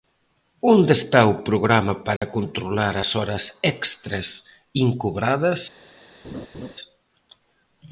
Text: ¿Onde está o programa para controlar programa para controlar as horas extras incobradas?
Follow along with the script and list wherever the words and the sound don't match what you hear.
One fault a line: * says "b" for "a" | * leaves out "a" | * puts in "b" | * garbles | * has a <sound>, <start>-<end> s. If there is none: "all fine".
* has a dropout, 2.2-2.2 s
* leaves out "programa para controlar"
* has a laugh, 6.2-6.7 s